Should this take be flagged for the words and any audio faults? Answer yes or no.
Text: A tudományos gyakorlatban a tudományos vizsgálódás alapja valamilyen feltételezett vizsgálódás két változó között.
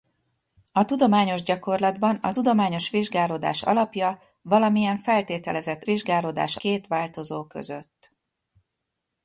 no